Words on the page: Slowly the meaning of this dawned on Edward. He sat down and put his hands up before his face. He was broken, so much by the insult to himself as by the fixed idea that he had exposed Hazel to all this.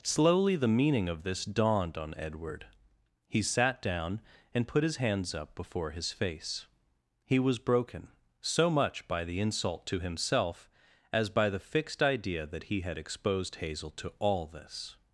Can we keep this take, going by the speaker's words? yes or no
yes